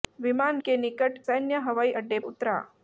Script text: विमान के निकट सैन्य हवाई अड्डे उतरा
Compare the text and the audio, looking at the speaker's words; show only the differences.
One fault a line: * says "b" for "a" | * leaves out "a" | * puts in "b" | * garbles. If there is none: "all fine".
all fine